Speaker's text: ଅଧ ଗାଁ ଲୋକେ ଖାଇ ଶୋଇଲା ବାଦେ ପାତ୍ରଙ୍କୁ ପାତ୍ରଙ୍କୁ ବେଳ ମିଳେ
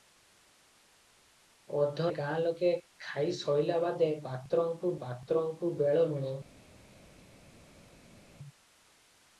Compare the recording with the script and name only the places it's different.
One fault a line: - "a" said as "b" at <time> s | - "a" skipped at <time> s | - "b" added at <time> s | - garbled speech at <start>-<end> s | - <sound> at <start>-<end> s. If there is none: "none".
none